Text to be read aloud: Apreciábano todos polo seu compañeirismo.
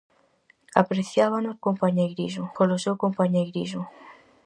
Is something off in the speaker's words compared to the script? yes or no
yes